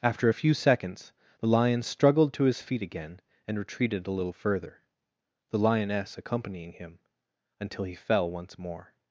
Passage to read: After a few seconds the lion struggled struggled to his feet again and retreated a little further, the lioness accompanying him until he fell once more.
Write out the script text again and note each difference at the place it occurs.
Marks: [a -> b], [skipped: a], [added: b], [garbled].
After a few seconds the lion struggled [skipped: struggled] to his feet again and retreated a little further, the lioness accompanying him until he fell once more.